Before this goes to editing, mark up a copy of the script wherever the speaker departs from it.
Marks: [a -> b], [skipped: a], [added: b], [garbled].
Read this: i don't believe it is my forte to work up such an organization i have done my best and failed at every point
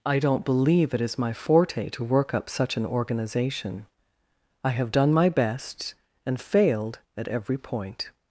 i don't believe it is my forte to work up such an organization i have done my best and failed at every point